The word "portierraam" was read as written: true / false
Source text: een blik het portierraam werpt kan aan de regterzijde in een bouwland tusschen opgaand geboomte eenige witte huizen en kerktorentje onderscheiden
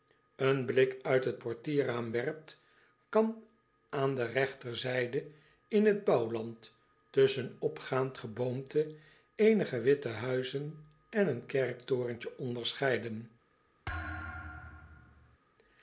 true